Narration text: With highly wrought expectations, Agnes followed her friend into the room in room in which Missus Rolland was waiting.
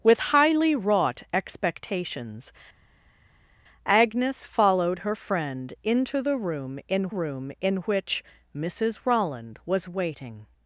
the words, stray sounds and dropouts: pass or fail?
pass